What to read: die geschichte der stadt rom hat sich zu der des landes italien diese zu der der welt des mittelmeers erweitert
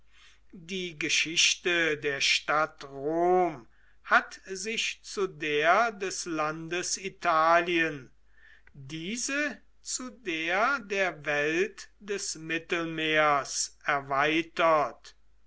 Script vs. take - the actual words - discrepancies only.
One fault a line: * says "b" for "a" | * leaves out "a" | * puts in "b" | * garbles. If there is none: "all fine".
all fine